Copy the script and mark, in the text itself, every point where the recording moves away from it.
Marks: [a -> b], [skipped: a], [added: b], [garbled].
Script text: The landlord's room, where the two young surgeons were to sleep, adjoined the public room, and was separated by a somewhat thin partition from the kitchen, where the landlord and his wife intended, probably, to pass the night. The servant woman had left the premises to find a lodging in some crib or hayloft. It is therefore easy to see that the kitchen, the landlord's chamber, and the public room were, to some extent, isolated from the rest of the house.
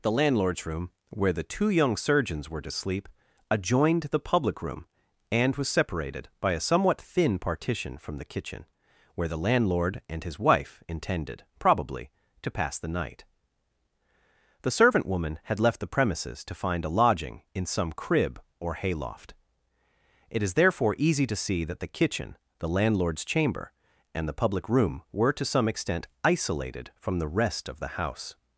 The landlord's room, where the two young surgeons were to sleep, adjoined the public room, and was separated by a somewhat thin partition from the kitchen, where the landlord and his wife intended, probably, to pass the night. The servant woman had left the premises to find a lodging in some crib or hayloft. It is therefore easy to see that the kitchen, the landlord's chamber, and the public room were, to some extent, isolated from the rest of the house.